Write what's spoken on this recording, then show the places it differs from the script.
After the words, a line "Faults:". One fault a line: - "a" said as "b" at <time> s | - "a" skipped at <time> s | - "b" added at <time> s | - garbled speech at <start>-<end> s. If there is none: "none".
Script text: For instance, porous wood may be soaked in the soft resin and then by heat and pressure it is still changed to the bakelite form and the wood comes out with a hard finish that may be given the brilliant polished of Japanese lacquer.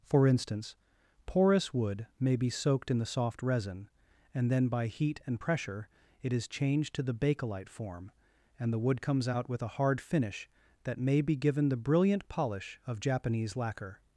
For instance, porous wood may be soaked in the soft resin and then by heat and pressure it is changed to the bakelite form and the wood comes out with a hard finish that may be given the brilliant polish of Japanese lacquer.
Faults:
- "still" skipped at 6.5 s
- "polished" said as "polish" at 12.3 s